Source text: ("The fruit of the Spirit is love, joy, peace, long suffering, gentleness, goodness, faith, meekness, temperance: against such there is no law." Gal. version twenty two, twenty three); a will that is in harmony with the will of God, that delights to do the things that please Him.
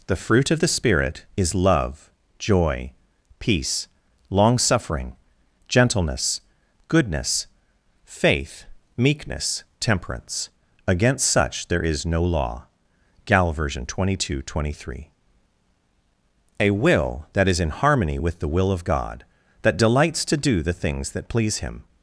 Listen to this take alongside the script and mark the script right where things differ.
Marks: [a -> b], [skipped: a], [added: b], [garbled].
("The fruit of the Spirit is love, joy, peace, long suffering, gentleness, goodness, faith, meekness, temperance: against such there is no law." Gal. version twenty two, twenty three); a will that is in harmony with the will of God, that delights to do the things that please Him.